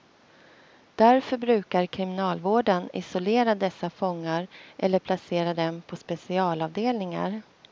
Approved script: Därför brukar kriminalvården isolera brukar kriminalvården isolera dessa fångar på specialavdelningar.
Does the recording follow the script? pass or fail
fail